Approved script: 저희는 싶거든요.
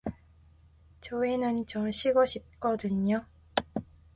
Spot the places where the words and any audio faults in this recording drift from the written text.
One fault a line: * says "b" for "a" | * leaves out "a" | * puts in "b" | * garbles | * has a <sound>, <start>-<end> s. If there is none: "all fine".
* puts in "좀 쉬고"